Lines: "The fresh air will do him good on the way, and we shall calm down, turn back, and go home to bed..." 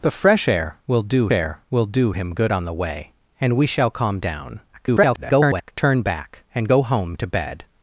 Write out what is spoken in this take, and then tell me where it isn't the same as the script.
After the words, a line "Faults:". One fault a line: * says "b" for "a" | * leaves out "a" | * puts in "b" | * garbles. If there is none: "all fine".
"The fresh air will do air will do him good on the way, and we shall calm down, [garbled] turn back, and go home to bed..."
Faults:
* puts in "air will do"
* garbles